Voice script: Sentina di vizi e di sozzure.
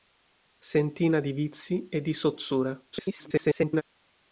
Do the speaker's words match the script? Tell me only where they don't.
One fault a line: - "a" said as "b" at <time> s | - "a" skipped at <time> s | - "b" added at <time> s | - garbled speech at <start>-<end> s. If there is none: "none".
- garbled speech at 2.9-3.8 s